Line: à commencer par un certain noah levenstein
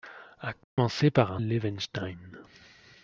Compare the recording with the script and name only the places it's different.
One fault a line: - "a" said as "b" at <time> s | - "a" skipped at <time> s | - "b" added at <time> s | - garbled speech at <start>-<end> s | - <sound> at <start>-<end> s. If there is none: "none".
- dropout at 0.6-0.8 s
- "certain noah" skipped at 1.4 s